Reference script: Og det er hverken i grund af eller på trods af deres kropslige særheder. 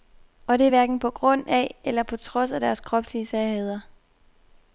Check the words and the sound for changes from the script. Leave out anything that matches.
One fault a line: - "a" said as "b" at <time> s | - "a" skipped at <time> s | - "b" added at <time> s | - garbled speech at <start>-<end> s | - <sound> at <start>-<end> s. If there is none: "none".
- "i" said as "på" at 1.0 s